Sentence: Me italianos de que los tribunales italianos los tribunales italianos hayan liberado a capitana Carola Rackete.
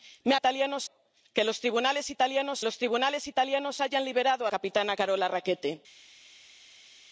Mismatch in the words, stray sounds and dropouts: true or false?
false